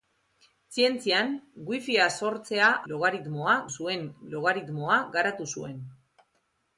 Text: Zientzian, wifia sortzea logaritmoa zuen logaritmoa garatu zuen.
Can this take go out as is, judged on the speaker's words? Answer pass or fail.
pass